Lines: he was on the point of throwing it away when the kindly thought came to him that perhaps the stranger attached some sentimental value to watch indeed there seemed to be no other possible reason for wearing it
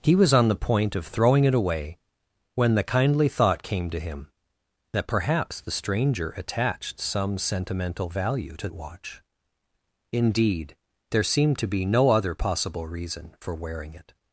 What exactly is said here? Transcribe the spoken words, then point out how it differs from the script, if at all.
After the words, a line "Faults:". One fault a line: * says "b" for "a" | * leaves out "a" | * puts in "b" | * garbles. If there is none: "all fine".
he was on the point of throwing it away when the kindly thought came to him that perhaps the stranger attached some sentimental value to watch indeed there seemed to be no other possible reason for wearing it
Faults:
all fine